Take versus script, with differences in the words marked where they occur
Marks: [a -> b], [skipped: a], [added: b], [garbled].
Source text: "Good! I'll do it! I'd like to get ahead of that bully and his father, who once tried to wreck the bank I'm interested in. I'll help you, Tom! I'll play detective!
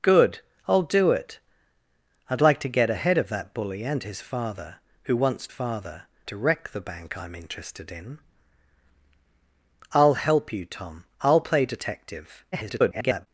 "Good! I'll do it! I'd like to get ahead of that bully and his father, who once [tried -> father] to wreck the bank I'm interested in. I'll help you, Tom! I'll play detective! [garbled]